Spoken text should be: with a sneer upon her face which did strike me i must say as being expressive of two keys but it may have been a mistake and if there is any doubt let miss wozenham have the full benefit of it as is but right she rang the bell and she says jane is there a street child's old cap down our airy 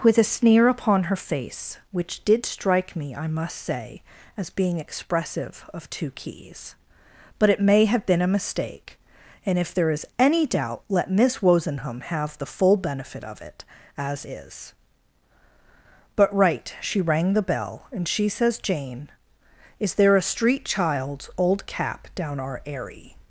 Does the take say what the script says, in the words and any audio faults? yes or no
yes